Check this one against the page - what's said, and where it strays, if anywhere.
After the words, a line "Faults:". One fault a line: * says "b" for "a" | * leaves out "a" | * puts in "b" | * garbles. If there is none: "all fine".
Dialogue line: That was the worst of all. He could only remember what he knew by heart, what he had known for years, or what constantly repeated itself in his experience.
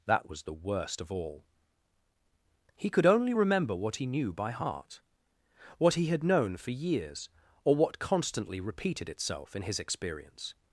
That was the worst of all. He could only remember what he knew by heart, what he had known for years, or what constantly repeated itself in his experience.
Faults:
all fine